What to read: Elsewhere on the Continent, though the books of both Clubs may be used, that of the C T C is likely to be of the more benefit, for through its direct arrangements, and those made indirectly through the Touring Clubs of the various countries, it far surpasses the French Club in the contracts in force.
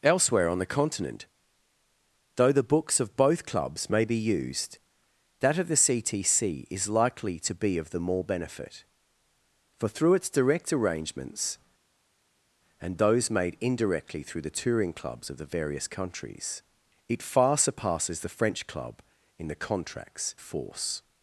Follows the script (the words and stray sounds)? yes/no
no